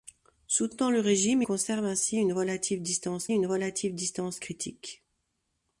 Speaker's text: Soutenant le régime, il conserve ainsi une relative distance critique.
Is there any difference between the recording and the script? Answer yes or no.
yes